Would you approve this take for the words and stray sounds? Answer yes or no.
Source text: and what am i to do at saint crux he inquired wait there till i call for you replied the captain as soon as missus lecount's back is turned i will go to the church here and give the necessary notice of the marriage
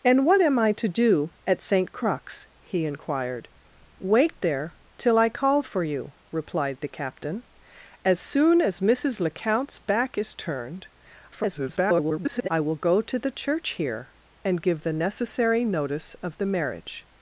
no